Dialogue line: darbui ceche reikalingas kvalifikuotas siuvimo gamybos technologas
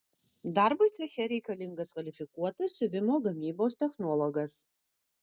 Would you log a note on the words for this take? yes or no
no